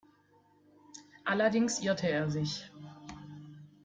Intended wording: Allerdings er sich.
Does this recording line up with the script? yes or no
no